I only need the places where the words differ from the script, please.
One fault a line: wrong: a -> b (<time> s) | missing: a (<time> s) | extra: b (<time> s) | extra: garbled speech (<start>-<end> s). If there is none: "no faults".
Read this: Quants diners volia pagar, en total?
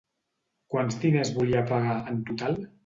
no faults